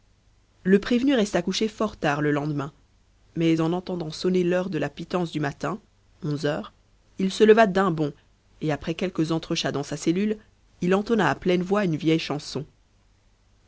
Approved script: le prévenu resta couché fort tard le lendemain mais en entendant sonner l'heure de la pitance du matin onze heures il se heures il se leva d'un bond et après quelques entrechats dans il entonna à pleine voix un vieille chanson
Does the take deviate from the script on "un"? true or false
true